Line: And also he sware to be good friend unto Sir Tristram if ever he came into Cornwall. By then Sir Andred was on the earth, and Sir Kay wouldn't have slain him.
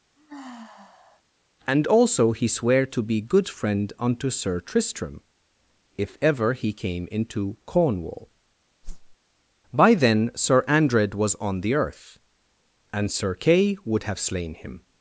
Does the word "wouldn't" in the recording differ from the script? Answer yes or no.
yes